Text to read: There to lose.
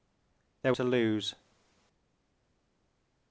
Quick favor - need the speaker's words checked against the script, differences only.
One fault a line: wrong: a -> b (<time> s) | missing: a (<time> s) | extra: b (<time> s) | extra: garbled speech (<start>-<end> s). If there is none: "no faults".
no faults